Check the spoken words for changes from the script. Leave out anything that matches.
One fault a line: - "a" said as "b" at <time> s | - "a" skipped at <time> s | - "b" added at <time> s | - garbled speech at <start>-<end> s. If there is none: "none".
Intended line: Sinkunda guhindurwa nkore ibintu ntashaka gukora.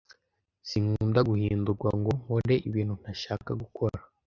- "ngo" added at 2.0 s